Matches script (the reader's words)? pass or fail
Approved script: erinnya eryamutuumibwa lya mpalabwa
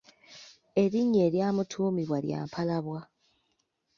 pass